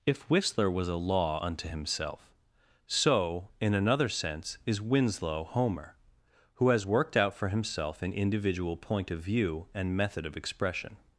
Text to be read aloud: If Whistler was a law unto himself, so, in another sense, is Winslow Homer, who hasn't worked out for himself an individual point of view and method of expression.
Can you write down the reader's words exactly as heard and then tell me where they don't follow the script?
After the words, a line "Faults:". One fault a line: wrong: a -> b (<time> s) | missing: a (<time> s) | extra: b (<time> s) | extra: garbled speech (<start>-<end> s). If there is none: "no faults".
If Whistler was a law unto himself, so, in another sense, is Winslow Homer, who has worked out for himself an individual point of view and method of expression.
Faults:
wrong: hasn't -> has (6.7 s)